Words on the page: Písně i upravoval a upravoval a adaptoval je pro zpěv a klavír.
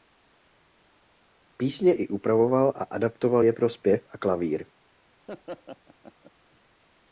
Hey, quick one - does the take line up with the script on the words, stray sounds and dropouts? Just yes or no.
no